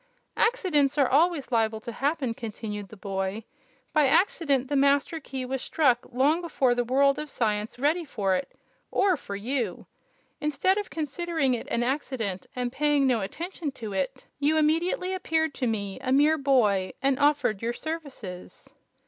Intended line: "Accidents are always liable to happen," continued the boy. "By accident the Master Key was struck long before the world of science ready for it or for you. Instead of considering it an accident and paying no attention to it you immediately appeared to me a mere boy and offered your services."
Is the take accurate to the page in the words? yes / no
yes